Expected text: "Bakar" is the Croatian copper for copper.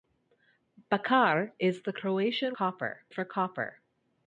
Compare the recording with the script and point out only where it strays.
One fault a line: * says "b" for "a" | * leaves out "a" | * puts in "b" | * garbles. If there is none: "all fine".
all fine